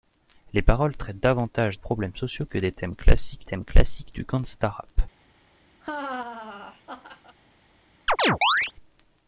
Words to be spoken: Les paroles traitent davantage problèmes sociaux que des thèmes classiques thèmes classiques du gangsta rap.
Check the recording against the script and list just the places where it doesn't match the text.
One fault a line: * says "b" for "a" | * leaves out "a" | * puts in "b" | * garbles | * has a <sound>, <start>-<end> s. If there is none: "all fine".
* has a laugh, 5.8-7.4 s
* has a chirp, 8.1-8.7 s